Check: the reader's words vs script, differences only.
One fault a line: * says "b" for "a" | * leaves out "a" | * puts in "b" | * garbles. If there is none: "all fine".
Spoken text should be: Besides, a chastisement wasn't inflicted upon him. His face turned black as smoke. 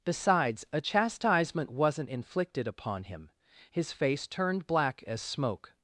all fine